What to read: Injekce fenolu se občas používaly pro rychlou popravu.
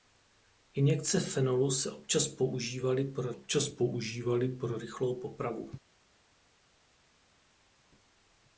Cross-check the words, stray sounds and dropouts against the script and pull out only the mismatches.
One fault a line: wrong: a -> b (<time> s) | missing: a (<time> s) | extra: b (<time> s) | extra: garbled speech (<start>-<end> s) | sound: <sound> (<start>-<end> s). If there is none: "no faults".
extra: občas používaly pro (3.3 s)